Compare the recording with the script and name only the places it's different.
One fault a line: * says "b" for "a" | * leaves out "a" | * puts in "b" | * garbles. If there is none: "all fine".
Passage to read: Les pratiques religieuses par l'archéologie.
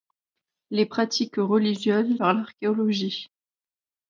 all fine